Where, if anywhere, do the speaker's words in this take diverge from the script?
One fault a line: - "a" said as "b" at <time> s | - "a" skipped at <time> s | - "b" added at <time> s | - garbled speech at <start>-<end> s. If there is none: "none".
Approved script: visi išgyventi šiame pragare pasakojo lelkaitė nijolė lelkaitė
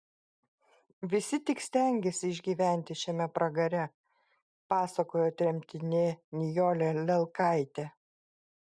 - "tik stengėsi" added at 1.5 s
- "lelkaitė" said as "tremtinė" at 5.4 s